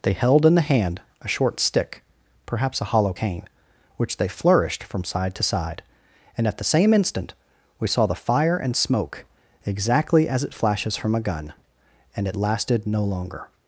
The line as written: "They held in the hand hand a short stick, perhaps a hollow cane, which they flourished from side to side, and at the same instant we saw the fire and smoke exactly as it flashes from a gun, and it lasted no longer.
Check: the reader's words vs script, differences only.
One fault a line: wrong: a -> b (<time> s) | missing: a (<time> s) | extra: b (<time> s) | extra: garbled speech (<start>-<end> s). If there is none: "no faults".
missing: hand (1.0 s)